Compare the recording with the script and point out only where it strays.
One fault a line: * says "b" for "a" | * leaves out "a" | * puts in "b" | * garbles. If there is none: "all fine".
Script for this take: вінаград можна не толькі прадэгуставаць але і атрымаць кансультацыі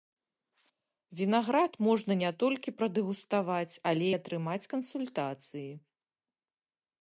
all fine